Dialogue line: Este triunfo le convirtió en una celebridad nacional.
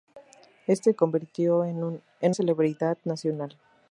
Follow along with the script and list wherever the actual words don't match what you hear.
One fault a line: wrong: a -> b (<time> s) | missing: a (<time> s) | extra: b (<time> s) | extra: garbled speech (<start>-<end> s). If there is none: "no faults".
missing: triunfo le (0.9 s)
missing: una (2.4 s)